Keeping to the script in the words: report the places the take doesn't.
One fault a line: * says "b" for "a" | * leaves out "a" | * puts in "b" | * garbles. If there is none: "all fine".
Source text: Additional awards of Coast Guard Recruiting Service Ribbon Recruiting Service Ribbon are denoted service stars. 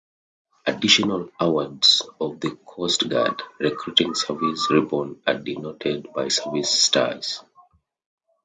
* puts in "the"
* leaves out "Recruiting Service Ribbon"
* puts in "by"